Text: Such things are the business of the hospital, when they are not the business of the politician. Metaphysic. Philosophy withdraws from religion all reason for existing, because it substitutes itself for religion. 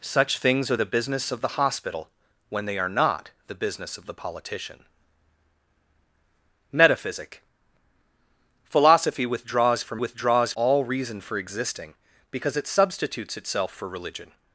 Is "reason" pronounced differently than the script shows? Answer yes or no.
no